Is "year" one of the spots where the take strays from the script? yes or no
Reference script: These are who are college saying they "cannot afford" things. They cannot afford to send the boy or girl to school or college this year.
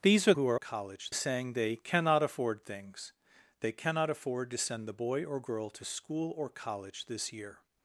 no